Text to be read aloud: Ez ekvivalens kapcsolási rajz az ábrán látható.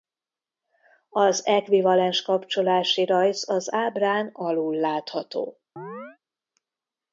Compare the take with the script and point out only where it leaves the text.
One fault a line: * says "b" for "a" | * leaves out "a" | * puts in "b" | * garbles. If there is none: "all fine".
* says "Az" for "Ez"
* puts in "alul"